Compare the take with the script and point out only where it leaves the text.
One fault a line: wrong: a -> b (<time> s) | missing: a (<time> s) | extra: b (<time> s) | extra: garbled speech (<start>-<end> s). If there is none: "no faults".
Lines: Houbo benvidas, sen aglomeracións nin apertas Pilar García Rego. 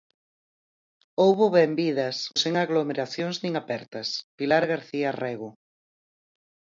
no faults